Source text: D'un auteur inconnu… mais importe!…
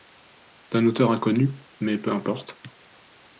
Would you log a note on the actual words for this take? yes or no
yes